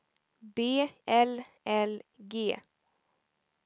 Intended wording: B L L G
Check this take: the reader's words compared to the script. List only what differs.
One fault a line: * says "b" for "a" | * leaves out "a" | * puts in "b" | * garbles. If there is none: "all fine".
all fine